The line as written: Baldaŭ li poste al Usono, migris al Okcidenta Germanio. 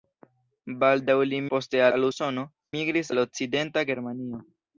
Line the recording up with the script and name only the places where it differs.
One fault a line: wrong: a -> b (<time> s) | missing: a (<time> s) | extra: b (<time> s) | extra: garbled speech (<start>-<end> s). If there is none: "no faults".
no faults